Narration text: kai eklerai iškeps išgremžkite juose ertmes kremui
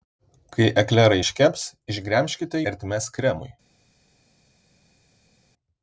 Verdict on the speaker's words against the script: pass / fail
fail